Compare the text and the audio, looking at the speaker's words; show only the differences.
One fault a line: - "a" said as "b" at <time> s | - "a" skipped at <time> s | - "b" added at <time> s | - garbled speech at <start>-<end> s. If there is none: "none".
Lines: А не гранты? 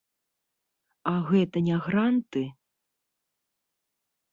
- "гэта" added at 1.3 s